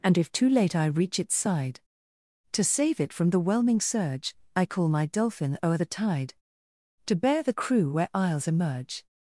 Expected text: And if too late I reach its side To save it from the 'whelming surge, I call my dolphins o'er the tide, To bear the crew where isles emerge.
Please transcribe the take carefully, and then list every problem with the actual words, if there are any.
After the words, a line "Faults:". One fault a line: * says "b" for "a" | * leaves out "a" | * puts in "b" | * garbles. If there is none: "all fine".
And if too late I reach its side To save it from the 'whelming surge, I call my dolphin o'er the tide, To bear the crew where isles emerge.
Faults:
* says "dolphin" for "dolphins"